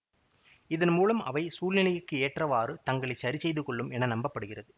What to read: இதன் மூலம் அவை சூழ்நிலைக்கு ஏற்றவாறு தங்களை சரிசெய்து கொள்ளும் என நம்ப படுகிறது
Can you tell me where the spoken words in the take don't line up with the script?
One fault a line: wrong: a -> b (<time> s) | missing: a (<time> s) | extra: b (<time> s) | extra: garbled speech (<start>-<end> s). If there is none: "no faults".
no faults